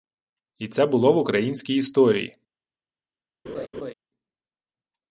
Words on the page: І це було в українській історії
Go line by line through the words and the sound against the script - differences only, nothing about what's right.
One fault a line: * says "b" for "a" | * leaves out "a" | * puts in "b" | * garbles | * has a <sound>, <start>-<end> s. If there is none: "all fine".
* has a laugh, 3.5-3.9 s